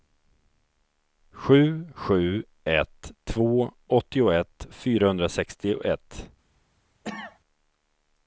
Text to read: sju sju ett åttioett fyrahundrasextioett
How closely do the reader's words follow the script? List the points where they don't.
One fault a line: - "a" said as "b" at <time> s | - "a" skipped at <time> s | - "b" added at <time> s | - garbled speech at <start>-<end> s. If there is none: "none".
- "två" added at 3.2 s